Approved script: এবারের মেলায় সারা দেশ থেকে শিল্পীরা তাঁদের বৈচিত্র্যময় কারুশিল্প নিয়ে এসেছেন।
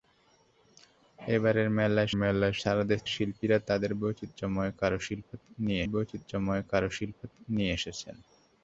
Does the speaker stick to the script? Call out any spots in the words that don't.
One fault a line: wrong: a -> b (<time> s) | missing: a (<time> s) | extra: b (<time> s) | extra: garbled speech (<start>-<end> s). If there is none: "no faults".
extra: মেলায় (2.2 s)
missing: থেকে (3.0 s)
extra: বৈচিত্র্যময় কারুশিল্প নিয়ে (5.9 s)